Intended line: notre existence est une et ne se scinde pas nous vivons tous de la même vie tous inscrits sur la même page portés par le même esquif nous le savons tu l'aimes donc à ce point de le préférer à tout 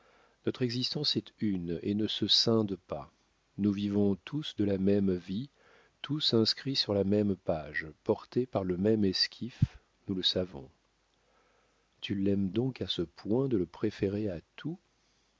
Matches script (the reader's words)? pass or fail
pass